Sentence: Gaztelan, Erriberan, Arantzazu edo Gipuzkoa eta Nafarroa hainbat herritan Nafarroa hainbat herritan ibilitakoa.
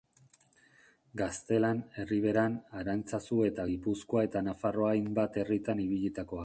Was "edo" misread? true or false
true